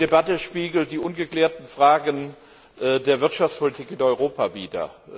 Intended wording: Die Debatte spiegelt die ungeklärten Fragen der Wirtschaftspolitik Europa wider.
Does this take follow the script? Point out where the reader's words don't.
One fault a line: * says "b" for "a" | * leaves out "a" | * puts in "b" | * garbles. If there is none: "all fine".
* puts in "in"